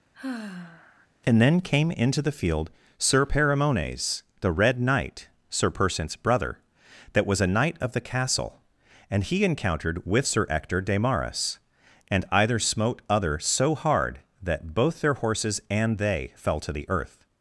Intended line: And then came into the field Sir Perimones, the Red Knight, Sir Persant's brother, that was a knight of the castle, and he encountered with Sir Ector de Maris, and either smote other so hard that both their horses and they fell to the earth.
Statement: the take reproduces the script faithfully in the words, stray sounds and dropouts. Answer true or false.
false